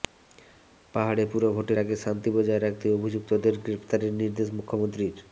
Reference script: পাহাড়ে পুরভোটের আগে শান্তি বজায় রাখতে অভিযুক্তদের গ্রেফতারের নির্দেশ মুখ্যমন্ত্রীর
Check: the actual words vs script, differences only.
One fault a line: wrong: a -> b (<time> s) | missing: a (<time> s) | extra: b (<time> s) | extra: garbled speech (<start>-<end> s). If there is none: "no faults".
no faults